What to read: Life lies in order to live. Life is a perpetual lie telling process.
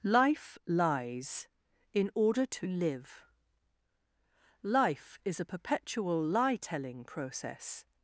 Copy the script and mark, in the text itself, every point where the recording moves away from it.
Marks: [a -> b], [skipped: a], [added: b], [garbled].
Life lies in order to live. Life is a perpetual lie telling process.